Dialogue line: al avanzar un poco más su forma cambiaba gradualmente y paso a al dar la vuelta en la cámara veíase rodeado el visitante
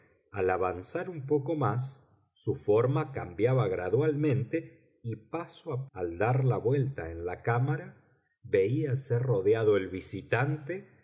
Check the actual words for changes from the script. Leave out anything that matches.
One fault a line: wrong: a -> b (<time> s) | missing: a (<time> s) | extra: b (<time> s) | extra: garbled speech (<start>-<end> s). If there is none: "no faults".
no faults